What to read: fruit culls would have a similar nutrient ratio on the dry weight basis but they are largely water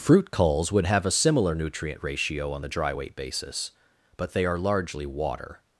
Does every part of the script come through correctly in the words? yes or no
yes